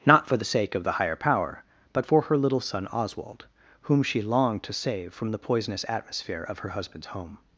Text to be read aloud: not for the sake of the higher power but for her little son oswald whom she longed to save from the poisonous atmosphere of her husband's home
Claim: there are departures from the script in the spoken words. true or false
false